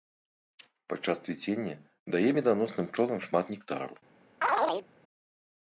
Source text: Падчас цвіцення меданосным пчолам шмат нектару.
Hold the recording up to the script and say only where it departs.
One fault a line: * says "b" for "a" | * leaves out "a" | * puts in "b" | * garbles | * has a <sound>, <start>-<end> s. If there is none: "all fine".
* puts in "дае"
* has a chirp, 4.4-4.9 s